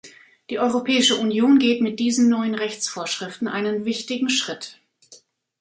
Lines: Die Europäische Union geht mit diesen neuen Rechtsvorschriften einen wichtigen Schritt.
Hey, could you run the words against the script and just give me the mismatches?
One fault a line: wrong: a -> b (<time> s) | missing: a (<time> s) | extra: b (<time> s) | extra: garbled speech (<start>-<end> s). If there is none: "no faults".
no faults